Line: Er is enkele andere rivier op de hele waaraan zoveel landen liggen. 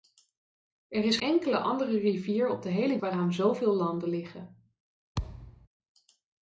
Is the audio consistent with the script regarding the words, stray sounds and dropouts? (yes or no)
no